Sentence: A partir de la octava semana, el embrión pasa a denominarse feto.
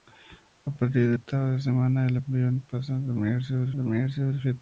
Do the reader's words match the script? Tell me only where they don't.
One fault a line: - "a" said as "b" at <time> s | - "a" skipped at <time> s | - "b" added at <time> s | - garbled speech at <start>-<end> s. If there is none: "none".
- "la" skipped at 1.2 s
- "denominarse" added at 3.7 s